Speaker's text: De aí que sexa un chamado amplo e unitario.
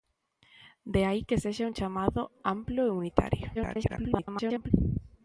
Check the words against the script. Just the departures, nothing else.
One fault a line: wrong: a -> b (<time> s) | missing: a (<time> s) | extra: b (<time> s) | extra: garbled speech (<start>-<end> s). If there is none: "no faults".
extra: garbled speech (3.5-4.7 s)